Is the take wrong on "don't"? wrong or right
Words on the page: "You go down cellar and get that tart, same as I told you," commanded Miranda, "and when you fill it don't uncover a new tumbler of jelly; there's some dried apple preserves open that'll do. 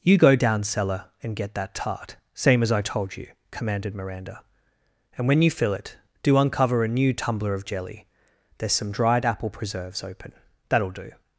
wrong